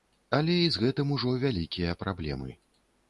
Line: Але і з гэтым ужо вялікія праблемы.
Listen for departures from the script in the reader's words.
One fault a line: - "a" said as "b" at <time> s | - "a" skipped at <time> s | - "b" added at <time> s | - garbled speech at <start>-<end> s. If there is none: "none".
none